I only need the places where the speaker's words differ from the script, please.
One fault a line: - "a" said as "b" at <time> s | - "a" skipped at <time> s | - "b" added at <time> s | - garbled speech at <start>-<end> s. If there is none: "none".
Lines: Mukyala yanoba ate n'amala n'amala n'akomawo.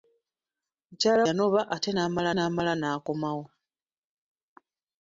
none